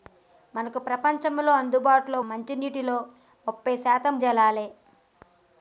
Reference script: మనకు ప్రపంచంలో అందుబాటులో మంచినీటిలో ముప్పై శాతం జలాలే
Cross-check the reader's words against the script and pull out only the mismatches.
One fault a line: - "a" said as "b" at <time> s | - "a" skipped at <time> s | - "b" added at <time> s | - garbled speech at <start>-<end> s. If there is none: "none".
none